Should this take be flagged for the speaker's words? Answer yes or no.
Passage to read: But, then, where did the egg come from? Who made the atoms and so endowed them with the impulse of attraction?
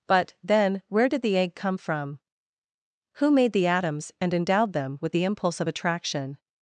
yes